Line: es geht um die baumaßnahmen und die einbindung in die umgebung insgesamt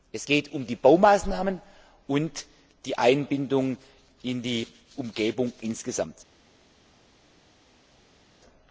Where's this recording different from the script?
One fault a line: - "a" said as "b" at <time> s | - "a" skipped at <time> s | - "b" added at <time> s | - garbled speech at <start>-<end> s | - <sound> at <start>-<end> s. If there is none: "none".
none